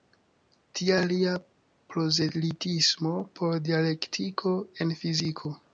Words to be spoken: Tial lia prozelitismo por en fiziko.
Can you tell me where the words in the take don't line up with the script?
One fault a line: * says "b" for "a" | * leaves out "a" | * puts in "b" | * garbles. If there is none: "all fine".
* puts in "dialektiko"